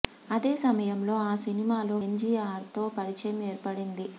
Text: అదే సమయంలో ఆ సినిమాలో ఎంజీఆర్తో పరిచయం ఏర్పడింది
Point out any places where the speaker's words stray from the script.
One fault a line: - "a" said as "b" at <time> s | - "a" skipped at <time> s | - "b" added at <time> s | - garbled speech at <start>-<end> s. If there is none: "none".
none